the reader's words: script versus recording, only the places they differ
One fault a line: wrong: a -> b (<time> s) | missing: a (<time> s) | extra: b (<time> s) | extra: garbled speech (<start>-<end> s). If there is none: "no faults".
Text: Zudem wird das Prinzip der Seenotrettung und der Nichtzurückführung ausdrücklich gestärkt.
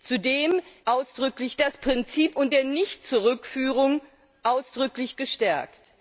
wrong: wird -> ausdrücklich (0.9 s)
missing: der Seenotrettung (2.4 s)